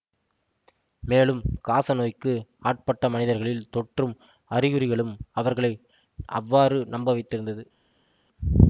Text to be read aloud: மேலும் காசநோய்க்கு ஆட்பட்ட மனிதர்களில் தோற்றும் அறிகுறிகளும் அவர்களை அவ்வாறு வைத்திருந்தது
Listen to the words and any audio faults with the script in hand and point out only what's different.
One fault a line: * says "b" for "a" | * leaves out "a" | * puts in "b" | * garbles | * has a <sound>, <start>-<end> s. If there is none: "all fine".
* puts in "நம்ப"